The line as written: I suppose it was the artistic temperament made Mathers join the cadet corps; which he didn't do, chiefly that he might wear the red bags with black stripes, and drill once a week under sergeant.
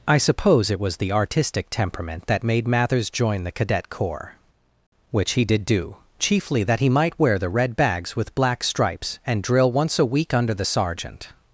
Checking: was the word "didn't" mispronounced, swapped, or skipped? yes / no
yes